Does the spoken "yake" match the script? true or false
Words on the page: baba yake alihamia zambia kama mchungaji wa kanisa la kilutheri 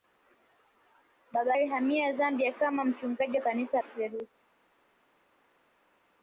false